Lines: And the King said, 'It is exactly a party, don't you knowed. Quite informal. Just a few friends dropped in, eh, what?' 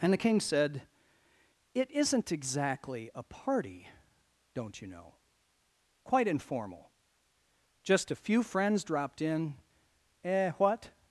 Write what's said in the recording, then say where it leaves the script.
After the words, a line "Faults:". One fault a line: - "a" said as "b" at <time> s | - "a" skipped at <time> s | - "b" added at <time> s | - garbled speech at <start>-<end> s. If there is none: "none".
And the King said, 'It isn't exactly a party, don't you know. Quite informal. Just a few friends dropped in, eh, what?'
Faults:
- "is" said as "isn't" at 1.9 s
- "knowed" said as "know" at 4.9 s